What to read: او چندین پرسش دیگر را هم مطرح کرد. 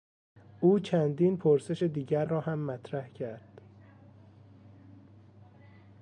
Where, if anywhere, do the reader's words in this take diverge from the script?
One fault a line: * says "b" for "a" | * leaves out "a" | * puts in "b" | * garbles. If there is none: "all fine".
all fine